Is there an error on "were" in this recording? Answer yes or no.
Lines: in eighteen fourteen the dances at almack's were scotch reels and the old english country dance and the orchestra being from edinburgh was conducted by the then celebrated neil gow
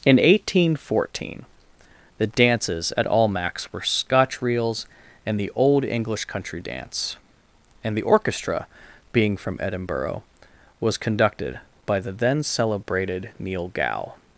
no